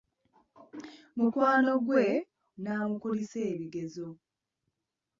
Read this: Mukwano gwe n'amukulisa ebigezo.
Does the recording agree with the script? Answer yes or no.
yes